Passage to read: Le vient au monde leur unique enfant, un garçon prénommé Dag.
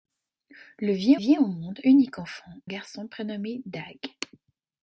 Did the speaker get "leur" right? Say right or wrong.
wrong